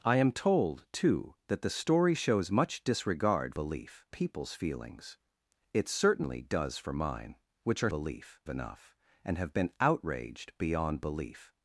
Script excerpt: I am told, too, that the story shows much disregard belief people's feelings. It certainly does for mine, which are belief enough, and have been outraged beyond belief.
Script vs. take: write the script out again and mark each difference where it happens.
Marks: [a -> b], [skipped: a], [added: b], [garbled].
I am told, too, that the story shows much disregard belief people's feelings. It certainly does for mine, which are belief enough, and have been outraged beyond belief.